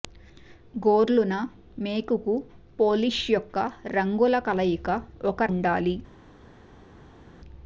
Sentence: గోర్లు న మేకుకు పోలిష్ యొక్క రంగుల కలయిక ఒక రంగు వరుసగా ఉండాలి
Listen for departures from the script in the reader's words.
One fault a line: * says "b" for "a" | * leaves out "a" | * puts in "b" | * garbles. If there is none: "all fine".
* leaves out "రంగు వరుసగా"